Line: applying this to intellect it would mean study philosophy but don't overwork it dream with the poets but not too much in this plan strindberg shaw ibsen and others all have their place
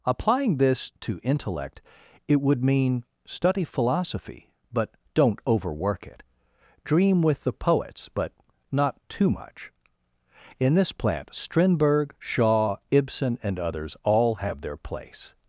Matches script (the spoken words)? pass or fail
fail